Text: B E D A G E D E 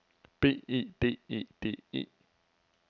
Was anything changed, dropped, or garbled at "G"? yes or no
yes